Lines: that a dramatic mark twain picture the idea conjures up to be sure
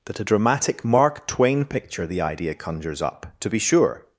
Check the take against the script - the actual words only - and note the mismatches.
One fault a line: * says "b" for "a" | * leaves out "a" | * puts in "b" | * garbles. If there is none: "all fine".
all fine